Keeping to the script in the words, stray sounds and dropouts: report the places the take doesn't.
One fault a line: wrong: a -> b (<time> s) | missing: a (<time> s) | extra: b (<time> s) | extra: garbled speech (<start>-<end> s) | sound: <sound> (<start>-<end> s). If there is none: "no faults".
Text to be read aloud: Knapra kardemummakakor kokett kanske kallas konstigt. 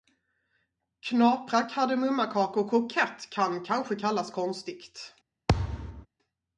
extra: kan (3.3 s)
sound: thud (5.5-6.1 s)